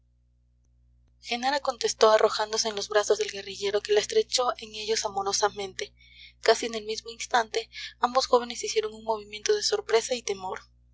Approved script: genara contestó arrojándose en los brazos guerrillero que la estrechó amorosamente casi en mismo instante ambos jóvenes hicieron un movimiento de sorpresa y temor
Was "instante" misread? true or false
false